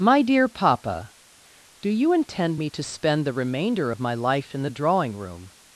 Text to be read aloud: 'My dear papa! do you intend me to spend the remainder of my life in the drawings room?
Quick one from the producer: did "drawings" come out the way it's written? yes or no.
no